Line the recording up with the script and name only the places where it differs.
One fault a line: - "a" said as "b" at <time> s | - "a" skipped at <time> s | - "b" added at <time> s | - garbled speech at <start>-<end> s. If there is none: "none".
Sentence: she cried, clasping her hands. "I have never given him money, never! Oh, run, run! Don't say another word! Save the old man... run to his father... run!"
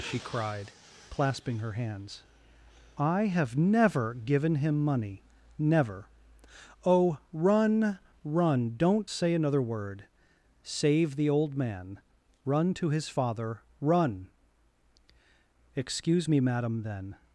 - "Excuse me madam then" added at 15.7 s